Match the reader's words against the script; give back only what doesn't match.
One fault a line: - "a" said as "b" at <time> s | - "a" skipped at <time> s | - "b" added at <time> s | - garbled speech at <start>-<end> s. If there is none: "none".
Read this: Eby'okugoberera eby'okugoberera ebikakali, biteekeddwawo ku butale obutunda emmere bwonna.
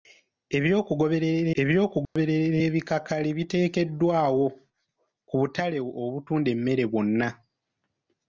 none